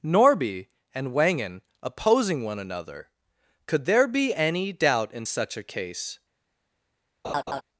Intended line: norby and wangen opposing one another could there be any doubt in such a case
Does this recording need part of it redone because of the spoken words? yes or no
no